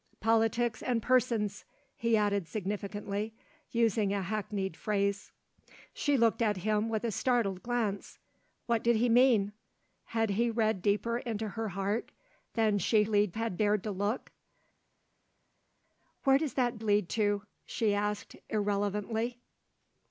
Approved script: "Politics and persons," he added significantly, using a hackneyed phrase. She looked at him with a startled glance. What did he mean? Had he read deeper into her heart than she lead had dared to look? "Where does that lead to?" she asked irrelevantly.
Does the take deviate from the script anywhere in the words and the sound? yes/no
no